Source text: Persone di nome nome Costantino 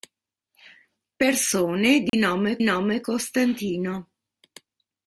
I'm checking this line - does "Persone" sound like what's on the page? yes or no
yes